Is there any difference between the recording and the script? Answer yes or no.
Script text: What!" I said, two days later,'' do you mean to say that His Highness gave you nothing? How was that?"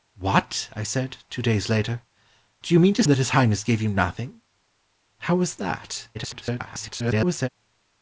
yes